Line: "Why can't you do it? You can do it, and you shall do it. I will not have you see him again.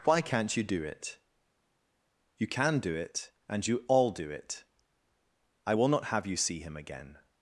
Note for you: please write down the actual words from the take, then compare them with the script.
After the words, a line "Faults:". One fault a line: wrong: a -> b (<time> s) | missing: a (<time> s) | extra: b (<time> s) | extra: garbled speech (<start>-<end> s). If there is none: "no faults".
"Why can't you do it? You can do it, and you all do it. I will not have you see him again.
Faults:
wrong: shall -> all (3.9 s)